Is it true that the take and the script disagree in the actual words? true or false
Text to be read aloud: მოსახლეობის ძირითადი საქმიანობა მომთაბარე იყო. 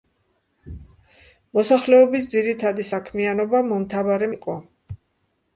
false